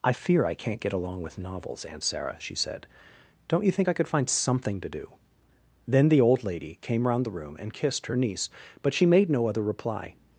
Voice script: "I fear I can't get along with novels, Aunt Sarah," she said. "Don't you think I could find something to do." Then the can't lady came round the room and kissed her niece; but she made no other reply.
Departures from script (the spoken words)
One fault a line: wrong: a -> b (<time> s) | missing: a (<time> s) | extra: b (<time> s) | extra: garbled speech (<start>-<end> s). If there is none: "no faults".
wrong: can't -> old (6.2 s)